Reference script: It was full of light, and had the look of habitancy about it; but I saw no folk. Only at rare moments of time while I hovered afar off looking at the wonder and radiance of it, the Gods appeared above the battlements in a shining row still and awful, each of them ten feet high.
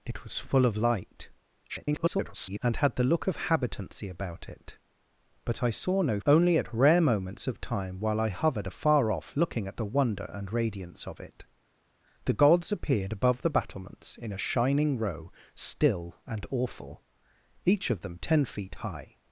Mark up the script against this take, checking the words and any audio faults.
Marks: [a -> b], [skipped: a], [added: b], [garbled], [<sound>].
It was full of light, [garbled] and had the look of habitancy about it; but I saw no [skipped: folk.] Only at rare moments of time while I hovered afar off looking at the wonder and radiance of it, the Gods appeared above the battlements in a shining row still and awful, each of them ten feet high.